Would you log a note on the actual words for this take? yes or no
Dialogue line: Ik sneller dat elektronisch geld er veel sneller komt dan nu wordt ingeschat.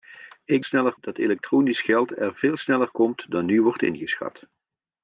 no